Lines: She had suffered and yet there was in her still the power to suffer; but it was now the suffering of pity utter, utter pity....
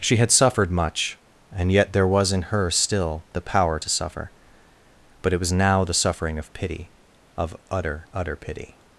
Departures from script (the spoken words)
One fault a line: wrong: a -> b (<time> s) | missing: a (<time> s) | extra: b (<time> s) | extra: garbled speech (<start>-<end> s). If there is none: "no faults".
extra: much (0.7 s)
extra: of (7.4 s)